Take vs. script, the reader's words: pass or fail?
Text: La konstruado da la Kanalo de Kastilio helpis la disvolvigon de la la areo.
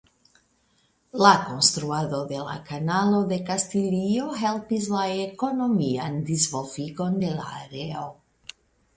fail